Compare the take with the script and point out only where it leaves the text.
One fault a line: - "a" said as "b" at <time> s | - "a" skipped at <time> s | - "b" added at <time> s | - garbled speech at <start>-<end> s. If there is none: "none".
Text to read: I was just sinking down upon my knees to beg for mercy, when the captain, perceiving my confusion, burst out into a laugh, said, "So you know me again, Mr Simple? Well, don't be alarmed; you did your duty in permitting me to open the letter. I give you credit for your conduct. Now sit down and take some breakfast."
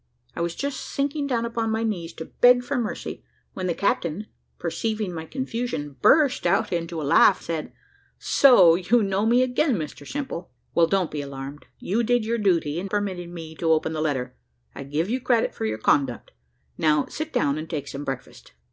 none